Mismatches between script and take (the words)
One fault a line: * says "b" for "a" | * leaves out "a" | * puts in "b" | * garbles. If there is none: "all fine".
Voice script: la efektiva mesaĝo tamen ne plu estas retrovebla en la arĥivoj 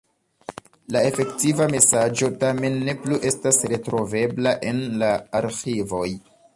all fine